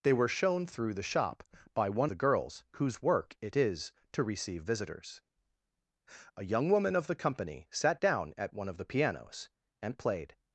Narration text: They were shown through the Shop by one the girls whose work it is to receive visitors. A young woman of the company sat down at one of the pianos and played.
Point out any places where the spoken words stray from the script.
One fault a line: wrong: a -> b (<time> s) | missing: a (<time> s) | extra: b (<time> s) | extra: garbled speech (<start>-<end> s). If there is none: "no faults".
no faults